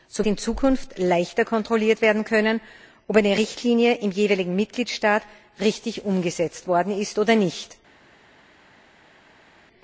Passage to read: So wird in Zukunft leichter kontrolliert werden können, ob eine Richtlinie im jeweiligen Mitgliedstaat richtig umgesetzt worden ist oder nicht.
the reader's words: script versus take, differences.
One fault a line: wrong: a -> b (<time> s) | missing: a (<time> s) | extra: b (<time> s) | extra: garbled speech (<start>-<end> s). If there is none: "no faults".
missing: wird (0.2 s)